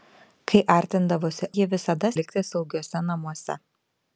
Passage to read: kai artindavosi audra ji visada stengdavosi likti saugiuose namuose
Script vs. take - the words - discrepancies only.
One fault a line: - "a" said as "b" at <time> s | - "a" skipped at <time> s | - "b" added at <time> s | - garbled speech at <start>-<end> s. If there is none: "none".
- "audra" skipped at 1.5 s
- "stengdavosi" skipped at 2.1 s